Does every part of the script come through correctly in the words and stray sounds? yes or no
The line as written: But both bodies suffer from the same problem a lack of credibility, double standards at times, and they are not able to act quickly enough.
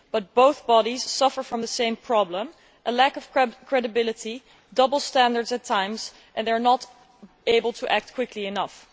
yes